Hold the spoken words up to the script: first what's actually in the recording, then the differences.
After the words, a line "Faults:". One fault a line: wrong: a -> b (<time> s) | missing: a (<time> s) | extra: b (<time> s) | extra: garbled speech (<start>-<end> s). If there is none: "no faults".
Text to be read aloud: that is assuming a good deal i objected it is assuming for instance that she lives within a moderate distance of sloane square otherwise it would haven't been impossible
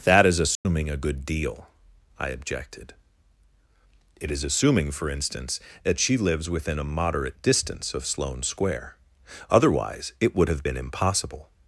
that is assuming a good deal i objected it is assuming for instance that she lives within a moderate distance of sloane square otherwise it would have been impossible
Faults:
wrong: haven't -> have (10.5 s)